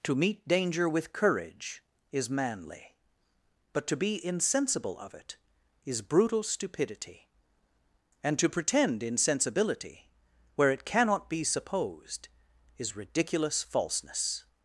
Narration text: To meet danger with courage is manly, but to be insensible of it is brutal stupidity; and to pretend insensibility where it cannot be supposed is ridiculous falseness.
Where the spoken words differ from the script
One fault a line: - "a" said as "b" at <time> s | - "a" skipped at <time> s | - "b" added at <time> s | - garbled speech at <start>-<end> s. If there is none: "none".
none